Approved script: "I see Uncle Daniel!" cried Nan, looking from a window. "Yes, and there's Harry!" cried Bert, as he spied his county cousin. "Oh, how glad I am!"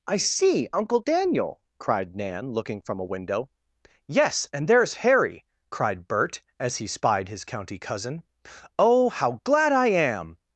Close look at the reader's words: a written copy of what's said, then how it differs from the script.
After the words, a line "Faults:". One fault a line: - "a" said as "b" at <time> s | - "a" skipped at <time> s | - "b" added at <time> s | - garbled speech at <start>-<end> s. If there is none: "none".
"I see Uncle Daniel!" cried Nan, looking from a window. "Yes, and there's Harry!" cried Bert, as he spied his county cousin. "Oh, how glad I am!"
Faults:
none